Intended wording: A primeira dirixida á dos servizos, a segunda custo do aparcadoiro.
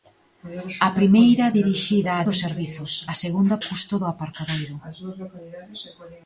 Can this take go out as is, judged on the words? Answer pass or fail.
pass